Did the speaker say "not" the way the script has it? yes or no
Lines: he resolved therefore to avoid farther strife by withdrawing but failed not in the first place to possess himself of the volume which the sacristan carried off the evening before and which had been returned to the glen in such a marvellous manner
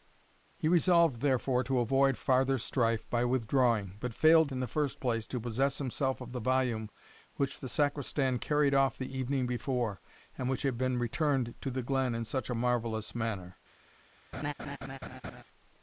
no